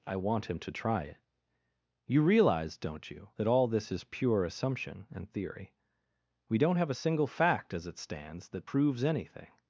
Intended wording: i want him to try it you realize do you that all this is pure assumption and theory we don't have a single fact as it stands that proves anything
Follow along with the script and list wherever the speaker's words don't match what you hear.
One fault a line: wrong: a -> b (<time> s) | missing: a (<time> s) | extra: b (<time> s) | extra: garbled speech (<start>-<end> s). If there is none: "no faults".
wrong: do -> don't (2.8 s)